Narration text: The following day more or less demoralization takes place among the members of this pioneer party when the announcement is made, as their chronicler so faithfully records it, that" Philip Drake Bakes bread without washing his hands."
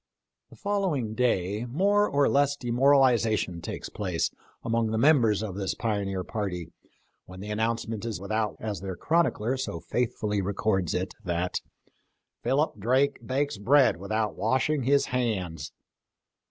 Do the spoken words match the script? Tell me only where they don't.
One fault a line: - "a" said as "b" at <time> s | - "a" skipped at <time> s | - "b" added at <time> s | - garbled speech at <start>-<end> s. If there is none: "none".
- "made" said as "without" at 8.2 s